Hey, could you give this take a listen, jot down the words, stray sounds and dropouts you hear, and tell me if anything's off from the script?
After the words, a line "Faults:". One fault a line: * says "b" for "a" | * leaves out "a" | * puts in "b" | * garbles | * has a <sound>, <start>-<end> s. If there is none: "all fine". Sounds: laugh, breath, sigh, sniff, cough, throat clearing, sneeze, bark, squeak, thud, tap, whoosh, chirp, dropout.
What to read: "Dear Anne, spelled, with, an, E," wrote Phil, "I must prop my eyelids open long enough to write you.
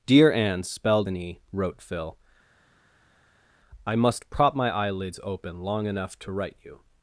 "Dear Anne, spelled, an, E," wrote Phil, "I must prop my eyelids open long enough to write you.
Faults:
* leaves out "with"